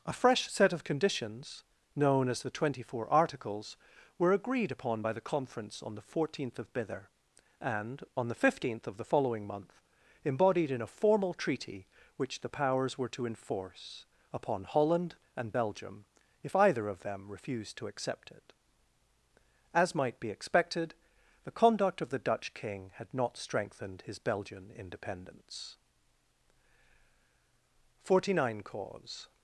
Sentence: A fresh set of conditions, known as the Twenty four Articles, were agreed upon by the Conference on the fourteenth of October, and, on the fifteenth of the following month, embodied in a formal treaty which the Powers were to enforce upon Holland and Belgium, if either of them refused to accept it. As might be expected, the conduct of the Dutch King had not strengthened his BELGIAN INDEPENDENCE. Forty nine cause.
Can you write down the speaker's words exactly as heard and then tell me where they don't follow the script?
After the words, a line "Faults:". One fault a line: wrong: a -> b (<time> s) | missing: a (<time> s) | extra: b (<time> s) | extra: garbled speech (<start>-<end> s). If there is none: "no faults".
A fresh set of conditions, known as the Twenty four Articles, were agreed upon by the Conference on the fourteenth of Bither, and, on the fifteenth of the following month, embodied in a formal treaty which the Powers were to enforce upon Holland and Belgium, if either of them refused to accept it. As might be expected, the conduct of the Dutch King had not strengthened his BELGIAN INDEPENDENCE. Forty nine cause.
Faults:
wrong: October -> Bither (6.7 s)